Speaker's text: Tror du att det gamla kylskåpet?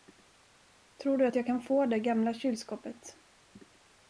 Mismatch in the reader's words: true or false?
true